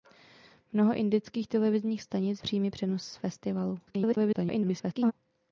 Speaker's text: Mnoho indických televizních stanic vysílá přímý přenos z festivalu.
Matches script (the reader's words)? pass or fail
fail